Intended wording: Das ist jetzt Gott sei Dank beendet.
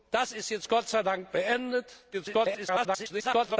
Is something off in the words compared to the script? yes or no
yes